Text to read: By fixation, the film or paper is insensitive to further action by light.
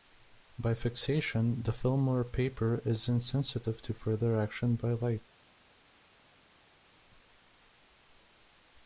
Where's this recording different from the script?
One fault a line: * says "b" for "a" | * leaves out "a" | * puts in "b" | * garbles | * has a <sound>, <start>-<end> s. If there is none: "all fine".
all fine